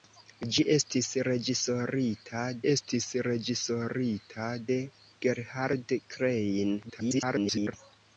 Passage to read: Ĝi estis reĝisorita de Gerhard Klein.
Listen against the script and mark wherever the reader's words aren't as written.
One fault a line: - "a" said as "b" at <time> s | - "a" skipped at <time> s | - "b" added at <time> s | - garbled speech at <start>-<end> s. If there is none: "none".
- "estis reĝisorita" added at 2.7 s
- garbled speech at 6.8-7.7 s